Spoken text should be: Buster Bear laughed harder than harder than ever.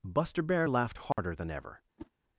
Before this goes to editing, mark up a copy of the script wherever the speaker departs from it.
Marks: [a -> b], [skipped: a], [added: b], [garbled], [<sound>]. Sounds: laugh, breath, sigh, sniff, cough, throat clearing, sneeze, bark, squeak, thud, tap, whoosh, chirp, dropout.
Buster Bear laughed harder [dropout] than [skipped: harder than] ever. [whoosh]